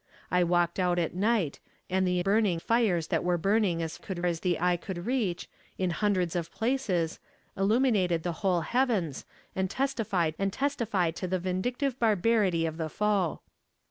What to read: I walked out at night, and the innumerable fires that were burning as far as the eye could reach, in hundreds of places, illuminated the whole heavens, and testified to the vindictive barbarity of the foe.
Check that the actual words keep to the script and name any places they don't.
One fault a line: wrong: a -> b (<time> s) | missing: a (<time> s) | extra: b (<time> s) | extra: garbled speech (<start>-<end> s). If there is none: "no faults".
wrong: innumerable -> burning (2.2 s)
wrong: far -> could (4.0 s)
extra: and testified (10.4 s)